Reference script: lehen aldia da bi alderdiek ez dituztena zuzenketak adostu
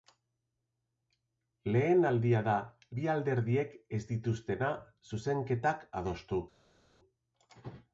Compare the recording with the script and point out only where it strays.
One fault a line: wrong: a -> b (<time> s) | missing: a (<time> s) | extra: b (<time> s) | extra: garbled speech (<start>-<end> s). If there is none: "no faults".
no faults